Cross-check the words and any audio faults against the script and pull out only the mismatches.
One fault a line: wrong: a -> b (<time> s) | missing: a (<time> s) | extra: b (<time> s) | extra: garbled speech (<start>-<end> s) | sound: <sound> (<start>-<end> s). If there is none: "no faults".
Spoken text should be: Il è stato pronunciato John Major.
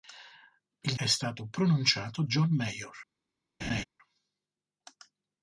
sound: laugh (3.6-3.8 s)